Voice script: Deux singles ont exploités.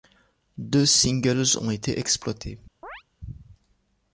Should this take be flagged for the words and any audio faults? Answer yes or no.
yes